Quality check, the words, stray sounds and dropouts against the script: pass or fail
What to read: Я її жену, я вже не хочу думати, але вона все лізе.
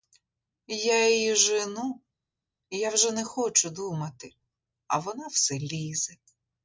fail